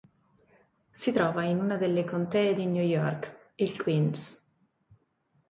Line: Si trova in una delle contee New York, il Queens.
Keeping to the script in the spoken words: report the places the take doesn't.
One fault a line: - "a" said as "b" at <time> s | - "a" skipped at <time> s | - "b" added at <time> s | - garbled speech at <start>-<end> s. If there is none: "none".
- "di" added at 2.5 s